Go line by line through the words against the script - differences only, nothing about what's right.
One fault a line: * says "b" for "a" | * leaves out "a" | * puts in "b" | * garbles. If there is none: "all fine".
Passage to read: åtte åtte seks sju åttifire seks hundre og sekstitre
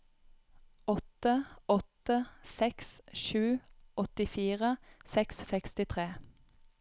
* leaves out "hundre"